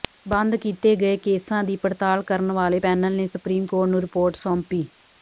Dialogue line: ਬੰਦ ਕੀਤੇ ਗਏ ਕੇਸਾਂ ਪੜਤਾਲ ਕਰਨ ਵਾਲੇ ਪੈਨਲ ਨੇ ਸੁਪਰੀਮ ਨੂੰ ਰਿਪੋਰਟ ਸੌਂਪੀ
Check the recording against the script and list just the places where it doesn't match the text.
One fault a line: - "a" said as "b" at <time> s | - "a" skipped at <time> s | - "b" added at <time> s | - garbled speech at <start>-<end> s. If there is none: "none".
- "ਦੀ" added at 1.6 s
- "ਕੋਰਟ" added at 3.6 s